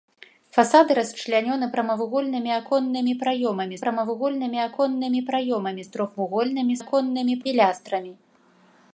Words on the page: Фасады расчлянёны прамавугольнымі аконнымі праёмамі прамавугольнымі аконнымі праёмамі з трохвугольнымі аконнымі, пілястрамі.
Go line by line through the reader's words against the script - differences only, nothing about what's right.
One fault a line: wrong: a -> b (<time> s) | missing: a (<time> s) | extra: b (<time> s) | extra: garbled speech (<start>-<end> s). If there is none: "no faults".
no faults